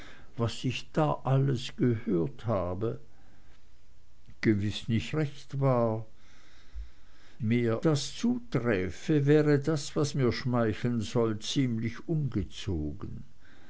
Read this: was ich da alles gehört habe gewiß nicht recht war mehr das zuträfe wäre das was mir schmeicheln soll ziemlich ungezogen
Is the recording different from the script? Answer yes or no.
no